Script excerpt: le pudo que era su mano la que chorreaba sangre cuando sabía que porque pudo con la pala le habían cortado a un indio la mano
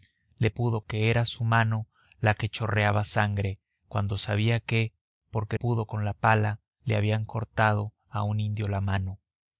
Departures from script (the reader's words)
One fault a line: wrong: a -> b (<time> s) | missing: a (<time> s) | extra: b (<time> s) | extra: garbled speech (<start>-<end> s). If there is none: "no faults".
no faults